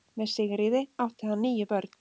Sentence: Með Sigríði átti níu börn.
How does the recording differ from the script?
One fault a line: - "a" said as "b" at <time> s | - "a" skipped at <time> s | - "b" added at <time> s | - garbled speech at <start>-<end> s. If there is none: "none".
- "hann" added at 1.3 s